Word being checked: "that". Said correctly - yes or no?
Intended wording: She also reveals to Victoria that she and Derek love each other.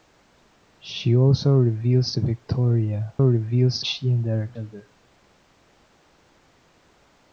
no